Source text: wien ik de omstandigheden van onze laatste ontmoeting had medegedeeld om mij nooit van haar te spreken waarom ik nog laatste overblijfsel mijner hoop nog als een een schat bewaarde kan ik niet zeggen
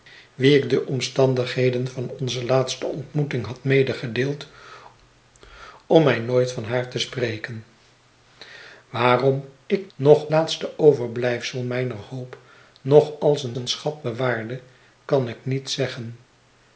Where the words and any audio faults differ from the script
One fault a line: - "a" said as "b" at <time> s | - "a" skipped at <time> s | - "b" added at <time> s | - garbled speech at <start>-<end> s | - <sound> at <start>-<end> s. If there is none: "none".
none